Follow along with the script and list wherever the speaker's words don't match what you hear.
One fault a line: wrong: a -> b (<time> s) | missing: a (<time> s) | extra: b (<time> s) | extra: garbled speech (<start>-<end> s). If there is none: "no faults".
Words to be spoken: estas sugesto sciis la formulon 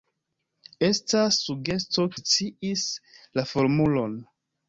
no faults